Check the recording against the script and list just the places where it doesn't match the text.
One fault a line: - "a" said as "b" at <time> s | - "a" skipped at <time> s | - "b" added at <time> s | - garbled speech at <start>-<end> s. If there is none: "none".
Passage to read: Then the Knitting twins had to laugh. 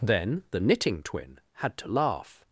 - "twins" said as "twin" at 1.0 s